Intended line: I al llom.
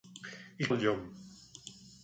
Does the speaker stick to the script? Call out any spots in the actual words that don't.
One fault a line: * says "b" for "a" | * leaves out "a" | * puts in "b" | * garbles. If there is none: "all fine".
all fine